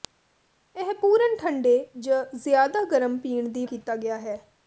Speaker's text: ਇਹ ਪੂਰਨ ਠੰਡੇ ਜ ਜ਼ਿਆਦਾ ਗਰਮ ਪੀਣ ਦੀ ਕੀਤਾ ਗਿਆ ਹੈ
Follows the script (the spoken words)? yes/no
yes